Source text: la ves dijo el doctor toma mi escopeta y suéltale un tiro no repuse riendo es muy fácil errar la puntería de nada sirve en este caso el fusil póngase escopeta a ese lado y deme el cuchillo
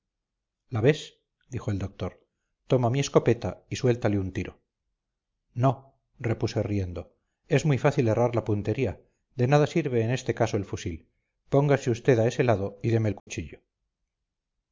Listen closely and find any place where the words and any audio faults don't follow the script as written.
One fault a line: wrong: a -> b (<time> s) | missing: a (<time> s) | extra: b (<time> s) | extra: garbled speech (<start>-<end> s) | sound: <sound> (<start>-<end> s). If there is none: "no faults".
wrong: escopeta -> usted (11.9 s)
sound: dropout (13.2-13.3 s)